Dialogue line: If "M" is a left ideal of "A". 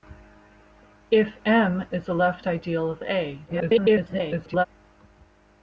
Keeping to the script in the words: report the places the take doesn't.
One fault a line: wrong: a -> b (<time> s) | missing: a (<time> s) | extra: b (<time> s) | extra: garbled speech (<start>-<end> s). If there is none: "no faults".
extra: garbled speech (3.5-4.7 s)